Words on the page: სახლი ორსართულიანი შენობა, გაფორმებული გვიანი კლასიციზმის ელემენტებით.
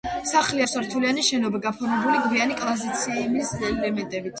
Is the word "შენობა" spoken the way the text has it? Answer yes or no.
yes